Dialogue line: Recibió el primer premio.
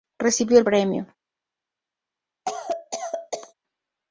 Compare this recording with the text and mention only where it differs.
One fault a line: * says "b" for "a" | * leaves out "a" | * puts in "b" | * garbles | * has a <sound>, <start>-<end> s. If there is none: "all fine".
* leaves out "primer"
* has a cough, 2.5-3.5 s